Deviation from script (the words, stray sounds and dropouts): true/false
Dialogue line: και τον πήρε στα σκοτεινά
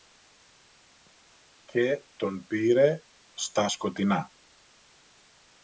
false